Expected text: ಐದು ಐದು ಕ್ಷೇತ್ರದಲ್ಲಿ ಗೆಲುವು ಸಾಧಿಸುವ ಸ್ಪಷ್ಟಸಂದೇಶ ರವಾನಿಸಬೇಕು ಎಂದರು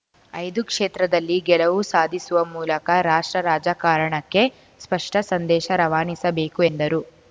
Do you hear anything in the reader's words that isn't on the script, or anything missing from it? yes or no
yes